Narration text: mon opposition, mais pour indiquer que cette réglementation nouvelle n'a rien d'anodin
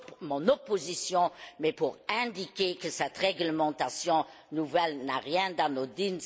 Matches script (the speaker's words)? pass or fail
pass